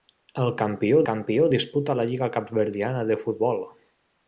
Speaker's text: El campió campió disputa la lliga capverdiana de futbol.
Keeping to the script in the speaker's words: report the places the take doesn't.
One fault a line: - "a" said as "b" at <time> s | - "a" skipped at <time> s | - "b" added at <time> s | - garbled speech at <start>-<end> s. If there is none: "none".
none